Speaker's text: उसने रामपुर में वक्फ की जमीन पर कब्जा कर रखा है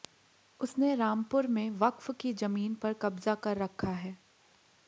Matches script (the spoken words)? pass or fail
pass